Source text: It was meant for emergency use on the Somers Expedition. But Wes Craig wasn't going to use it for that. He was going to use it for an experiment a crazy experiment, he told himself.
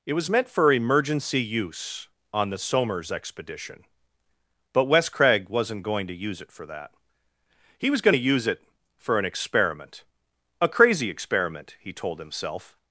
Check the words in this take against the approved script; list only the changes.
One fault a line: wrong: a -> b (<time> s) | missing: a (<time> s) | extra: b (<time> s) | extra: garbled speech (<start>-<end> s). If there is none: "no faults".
no faults